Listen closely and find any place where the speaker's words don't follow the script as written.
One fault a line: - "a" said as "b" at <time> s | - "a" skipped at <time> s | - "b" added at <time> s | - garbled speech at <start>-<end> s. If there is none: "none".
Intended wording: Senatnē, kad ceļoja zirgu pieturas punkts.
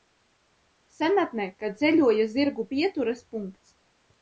none